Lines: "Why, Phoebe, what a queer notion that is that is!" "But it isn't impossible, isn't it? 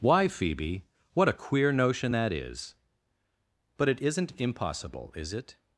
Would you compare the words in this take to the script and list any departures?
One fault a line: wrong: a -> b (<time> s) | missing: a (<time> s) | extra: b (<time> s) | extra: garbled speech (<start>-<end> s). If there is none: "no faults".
missing: that is (2.7 s)
wrong: isn't -> is (5.1 s)